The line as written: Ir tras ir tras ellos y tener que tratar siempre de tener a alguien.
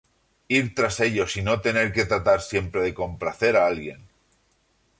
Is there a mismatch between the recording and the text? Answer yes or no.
yes